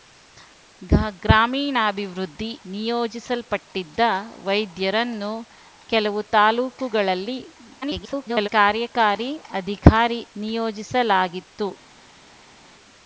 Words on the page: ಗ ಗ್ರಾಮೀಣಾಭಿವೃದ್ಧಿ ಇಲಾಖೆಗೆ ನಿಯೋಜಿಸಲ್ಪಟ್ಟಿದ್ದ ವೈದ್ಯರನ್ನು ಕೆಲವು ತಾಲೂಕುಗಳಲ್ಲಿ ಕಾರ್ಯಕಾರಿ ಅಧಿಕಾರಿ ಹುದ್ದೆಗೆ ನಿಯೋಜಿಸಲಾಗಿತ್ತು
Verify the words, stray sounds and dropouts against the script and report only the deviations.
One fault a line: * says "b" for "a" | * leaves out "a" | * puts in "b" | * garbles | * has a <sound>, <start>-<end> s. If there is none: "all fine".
* leaves out "ಇಲಾಖೆಗೆ"
* garbles
* leaves out "ಹುದ್ದೆಗೆ"